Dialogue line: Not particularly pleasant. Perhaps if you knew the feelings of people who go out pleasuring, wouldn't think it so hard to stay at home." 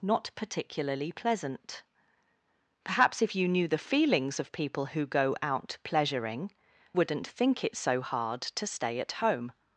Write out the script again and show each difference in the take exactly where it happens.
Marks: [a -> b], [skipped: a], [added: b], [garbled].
Not particularly pleasant. Perhaps if you knew the feelings of people who go out pleasuring, wouldn't think it so hard to stay at home."